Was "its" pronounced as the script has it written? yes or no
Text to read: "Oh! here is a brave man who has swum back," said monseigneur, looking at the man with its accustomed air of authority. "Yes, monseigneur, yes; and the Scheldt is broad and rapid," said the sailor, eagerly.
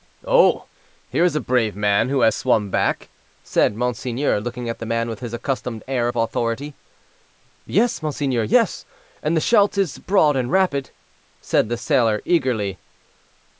no